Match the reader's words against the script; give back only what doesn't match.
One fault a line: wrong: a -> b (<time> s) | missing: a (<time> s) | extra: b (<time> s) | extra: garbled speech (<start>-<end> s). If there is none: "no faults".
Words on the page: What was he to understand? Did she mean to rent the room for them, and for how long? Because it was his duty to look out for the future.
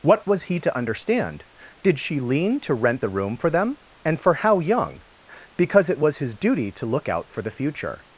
wrong: mean -> lean (2.2 s)
wrong: long -> young (4.6 s)